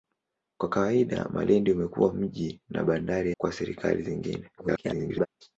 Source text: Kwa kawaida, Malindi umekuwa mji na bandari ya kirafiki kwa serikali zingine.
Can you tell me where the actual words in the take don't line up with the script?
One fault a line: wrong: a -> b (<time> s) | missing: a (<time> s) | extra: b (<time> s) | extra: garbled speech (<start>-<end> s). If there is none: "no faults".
missing: ya kirafiki (3.3 s)
extra: garbled speech (4.6-5.3 s)